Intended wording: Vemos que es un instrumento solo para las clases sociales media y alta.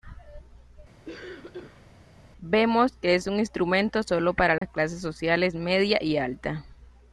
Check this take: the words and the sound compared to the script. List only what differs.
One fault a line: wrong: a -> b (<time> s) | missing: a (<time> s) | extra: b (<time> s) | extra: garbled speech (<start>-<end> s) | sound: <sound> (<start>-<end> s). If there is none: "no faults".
sound: cough (1.1-1.9 s)
sound: dropout (4.6-4.6 s)